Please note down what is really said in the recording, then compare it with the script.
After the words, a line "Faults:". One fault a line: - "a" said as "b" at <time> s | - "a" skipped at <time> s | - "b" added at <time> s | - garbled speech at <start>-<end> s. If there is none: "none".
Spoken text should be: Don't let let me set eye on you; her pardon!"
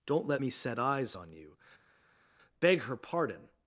Don't let me set eyes on you; beg her pardon!"
Faults:
- "let" skipped at 0.4 s
- "eye" said as "eyes" at 0.8 s
- "beg" added at 2.6 s